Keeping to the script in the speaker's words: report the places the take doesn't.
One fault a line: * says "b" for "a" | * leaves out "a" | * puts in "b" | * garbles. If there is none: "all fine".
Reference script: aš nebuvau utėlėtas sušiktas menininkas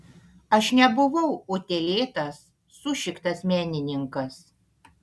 all fine